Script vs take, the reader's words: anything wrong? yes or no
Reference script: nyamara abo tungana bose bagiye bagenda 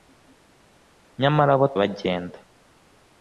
yes